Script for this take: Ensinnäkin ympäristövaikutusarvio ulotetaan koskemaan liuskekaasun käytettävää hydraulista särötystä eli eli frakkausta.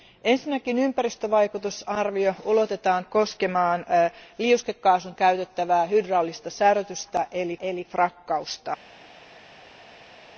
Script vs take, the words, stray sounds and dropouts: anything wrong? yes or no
no